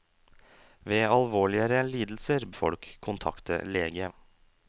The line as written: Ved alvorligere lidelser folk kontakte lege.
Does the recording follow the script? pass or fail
pass